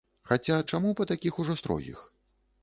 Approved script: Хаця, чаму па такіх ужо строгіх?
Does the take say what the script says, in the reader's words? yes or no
yes